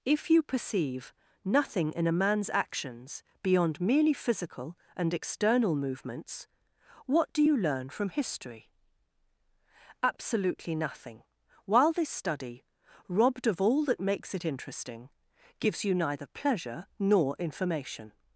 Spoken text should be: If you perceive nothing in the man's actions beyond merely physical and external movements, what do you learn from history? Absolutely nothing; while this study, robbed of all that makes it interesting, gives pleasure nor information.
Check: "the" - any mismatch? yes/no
yes